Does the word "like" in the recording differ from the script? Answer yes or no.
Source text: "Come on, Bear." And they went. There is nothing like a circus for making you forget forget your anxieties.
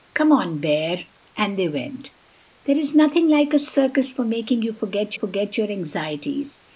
no